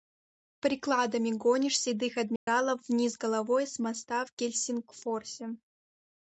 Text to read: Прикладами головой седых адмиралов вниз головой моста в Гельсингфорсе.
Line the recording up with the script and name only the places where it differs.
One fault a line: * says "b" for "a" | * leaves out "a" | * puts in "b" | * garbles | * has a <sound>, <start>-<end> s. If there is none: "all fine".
* says "гонишь" for "головой"
* has a dropout, 2.4-2.5 s
* puts in "с"